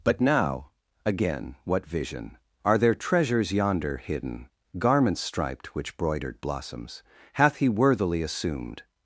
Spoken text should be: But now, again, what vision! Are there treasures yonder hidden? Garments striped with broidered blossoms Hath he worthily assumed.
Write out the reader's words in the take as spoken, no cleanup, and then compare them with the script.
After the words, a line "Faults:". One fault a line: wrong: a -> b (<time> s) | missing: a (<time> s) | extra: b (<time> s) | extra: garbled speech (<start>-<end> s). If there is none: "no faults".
But now, again, what vision! Are there treasures yonder hidden? Garments striped which broidered blossoms Hath he worthily assumed.
Faults:
wrong: with -> which (5.8 s)